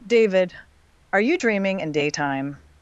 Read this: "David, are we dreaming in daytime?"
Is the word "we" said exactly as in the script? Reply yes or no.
no